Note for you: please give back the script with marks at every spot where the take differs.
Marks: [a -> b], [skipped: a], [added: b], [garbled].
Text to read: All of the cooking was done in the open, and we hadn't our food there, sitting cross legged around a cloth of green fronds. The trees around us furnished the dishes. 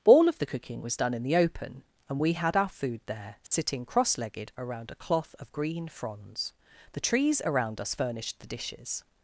All of the cooking was done in the open, and we [hadn't -> had] our food there, sitting cross legged around a cloth of green fronds. The trees around us furnished the dishes.